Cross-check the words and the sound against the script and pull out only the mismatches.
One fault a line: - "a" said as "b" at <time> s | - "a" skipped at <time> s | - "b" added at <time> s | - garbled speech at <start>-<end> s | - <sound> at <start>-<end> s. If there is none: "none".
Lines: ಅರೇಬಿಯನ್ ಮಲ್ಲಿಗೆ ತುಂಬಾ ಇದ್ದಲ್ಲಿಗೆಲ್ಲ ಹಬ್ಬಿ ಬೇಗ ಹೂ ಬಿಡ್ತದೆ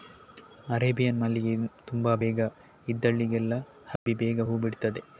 - "ಬೇಗ" added at 2.2 s
- dropout at 4.0-4.1 s